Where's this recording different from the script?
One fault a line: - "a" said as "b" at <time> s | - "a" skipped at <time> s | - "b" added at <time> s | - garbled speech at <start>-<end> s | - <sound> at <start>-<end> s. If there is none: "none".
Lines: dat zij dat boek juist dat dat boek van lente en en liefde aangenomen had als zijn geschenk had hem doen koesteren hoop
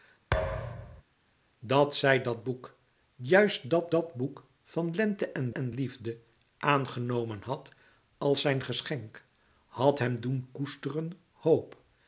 - thud at 0.3-1.0 s